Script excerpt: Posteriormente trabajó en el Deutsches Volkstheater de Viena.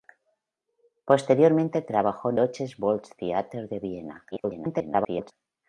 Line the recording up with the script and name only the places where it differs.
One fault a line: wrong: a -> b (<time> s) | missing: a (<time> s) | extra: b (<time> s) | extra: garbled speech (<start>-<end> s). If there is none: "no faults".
missing: el (2.4 s)
extra: garbled speech (4.3-5.3 s)